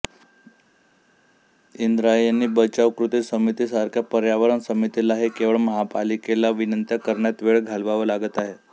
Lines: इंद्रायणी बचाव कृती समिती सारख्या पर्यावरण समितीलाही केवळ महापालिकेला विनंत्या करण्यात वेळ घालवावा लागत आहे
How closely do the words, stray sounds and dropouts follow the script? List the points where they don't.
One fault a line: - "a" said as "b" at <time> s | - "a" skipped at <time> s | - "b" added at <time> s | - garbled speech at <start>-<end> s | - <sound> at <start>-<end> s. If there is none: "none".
none